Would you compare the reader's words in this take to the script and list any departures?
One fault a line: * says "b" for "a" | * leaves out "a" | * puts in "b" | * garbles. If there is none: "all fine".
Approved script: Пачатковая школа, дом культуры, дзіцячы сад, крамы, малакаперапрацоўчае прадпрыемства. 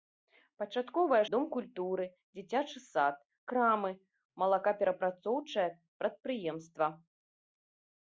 * leaves out "школа"